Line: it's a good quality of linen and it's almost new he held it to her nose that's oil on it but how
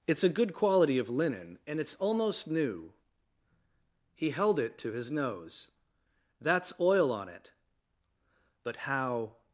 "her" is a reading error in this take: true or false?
true